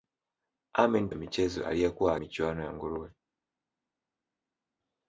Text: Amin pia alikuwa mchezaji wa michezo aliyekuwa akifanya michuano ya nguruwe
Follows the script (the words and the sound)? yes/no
no